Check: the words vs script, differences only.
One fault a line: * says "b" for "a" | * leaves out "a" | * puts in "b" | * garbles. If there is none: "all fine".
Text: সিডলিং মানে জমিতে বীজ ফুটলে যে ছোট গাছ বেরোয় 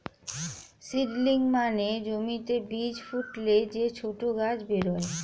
all fine